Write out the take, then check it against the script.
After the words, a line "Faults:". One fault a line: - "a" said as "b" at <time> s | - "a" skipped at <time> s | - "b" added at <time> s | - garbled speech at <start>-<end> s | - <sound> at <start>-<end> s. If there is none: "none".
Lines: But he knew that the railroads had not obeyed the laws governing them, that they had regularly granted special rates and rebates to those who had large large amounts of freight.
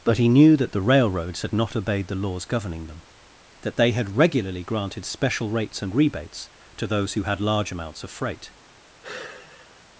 But he knew that the railroads had not obeyed the laws governing them, that they had regularly granted special rates and rebates to those who had large amounts of freight.
Faults:
- "large" skipped at 7.7 s
- sigh at 9.0-9.9 s